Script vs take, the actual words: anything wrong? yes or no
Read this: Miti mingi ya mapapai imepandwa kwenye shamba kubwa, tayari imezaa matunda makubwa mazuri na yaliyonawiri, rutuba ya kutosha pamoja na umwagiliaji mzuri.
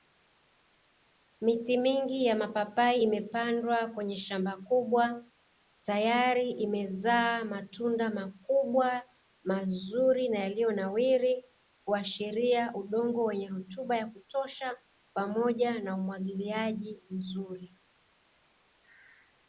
yes